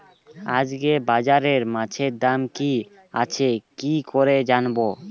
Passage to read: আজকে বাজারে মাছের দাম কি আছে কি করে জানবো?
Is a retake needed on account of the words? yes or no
no